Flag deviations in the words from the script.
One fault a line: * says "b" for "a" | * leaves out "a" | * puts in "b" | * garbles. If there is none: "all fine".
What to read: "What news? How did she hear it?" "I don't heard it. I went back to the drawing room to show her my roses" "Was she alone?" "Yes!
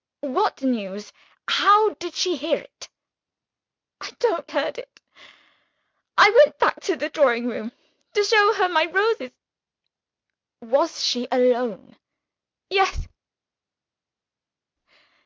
all fine